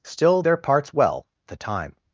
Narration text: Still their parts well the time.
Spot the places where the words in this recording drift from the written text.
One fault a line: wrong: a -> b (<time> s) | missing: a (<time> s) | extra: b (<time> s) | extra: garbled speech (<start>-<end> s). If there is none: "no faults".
no faults